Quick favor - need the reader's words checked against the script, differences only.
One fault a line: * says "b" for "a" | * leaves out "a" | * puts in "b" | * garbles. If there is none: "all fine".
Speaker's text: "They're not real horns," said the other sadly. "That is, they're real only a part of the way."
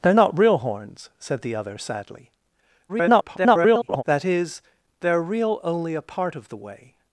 * garbles